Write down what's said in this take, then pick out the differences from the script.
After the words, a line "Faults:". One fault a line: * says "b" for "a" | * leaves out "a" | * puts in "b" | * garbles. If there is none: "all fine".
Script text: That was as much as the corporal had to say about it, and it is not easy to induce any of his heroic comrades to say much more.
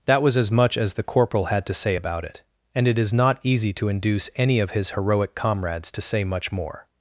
That was as much as the corporal had to say about it, and it is not easy to induce any of his heroic comrades to say much more.
Faults:
all fine